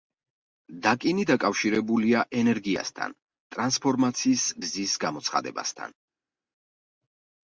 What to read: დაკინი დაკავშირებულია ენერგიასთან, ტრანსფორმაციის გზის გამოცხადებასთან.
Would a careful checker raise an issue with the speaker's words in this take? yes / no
no